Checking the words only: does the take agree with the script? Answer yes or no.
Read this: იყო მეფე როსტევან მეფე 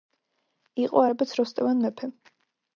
no